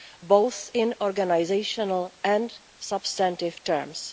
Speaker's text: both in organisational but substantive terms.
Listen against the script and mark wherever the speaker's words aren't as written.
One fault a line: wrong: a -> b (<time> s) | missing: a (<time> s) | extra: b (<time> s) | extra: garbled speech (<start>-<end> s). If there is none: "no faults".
wrong: but -> and (2.2 s)